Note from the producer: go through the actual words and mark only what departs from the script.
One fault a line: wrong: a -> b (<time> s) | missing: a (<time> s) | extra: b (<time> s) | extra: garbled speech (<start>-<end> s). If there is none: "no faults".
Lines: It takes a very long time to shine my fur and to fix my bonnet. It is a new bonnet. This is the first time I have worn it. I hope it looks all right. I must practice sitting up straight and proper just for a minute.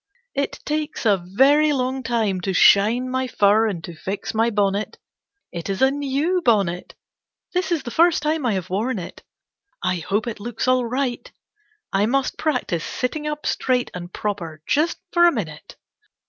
no faults